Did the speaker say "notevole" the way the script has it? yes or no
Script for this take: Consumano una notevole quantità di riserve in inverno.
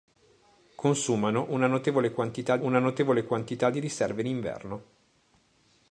yes